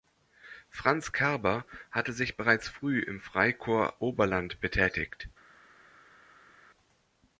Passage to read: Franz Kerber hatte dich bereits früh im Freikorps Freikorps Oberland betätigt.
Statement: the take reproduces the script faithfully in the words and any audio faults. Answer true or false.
false